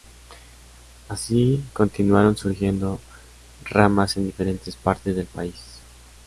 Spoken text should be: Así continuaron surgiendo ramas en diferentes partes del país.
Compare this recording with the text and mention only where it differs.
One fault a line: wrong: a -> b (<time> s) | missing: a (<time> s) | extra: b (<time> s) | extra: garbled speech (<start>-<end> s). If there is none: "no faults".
no faults